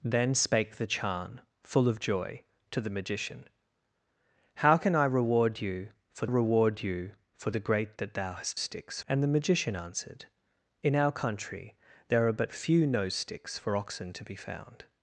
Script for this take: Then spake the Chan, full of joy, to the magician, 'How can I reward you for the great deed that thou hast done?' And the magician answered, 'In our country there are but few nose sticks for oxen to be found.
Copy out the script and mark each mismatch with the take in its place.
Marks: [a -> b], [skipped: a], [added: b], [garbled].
Then spake the Chan, full of joy, to the magician, 'How can I reward you for [added: reward you for] the great [skipped: deed] that thou hast [done?' -> sticks] And the magician answered, 'In our country there are but few nose sticks for oxen to be found.